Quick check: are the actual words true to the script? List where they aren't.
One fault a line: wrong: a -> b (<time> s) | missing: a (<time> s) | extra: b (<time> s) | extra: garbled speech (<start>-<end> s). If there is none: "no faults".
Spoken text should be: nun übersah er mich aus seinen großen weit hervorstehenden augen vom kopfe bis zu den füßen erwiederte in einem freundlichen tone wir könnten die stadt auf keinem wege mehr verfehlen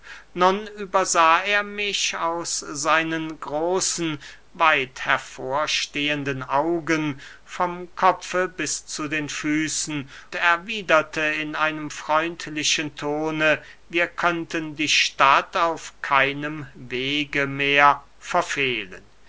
no faults